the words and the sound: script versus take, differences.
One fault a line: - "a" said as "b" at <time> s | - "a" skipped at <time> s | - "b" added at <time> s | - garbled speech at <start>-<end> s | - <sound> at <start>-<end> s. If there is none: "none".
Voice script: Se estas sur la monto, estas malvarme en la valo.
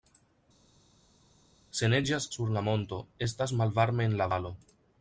- "estas" said as "neĝas" at 1.9 s